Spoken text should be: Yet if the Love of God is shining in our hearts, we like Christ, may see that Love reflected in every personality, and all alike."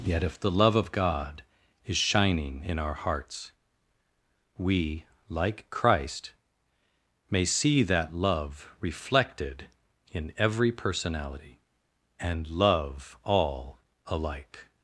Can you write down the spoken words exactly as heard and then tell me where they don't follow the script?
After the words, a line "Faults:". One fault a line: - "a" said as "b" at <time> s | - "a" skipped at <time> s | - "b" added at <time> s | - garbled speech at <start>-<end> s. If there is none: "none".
Yet if the Love of God is shining in our hearts, we like Christ, may see that Love reflected in every personality, and love all alike."
Faults:
- "love" added at 12.5 s